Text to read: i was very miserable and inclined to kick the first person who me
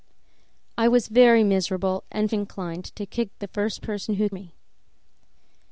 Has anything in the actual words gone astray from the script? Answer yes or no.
no